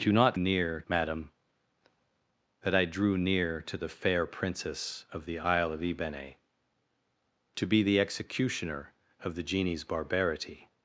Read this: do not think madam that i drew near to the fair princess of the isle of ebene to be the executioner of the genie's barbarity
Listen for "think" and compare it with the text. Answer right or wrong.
wrong